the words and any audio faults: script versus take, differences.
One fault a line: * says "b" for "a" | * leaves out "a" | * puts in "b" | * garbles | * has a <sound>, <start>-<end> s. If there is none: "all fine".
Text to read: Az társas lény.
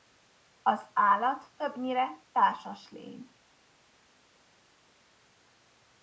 * puts in "állat többnyire"